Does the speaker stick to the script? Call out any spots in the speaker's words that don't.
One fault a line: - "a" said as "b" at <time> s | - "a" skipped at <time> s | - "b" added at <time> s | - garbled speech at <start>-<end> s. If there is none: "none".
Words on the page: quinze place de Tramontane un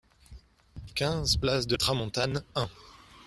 none